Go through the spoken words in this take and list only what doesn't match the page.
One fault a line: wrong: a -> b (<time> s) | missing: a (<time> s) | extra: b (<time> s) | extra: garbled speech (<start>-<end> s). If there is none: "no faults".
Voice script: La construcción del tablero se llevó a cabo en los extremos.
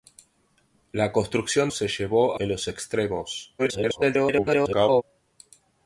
missing: del tablero (1.7 s)
missing: a cabo (2.4 s)
extra: garbled speech (3.6-5.0 s)